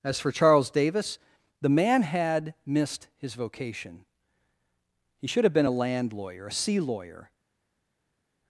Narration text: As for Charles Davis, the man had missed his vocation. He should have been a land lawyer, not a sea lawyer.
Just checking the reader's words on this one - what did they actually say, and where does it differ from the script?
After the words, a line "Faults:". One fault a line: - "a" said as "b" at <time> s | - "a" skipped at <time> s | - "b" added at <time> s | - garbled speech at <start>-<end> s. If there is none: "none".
As for Charles Davis, the man had missed his vocation. He should have been a land lawyer, a sea lawyer.
Faults:
- "not" skipped at 6.5 s